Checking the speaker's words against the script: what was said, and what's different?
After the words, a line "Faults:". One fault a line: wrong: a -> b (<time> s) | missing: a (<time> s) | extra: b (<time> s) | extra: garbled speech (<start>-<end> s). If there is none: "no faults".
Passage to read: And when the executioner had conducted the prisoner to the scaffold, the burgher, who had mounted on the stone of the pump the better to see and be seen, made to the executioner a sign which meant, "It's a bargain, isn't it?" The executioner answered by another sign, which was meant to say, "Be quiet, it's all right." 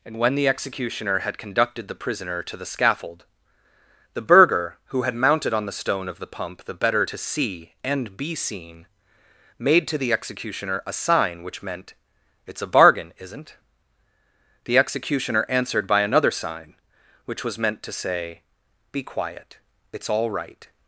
And when the executioner had conducted the prisoner to the scaffold, the burgher, who had mounted on the stone of the pump the better to see and be seen, made to the executioner a sign which meant, "It's a bargain, isn't?" The executioner answered by another sign, which was meant to say, "Be quiet, it's all right."
Faults:
missing: it (13.6 s)